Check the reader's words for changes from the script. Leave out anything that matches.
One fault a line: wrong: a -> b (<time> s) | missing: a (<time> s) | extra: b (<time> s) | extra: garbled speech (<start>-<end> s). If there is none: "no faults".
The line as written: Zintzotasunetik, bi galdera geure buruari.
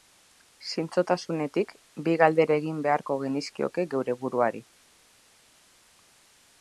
extra: egin beharko genizkioke (2.6 s)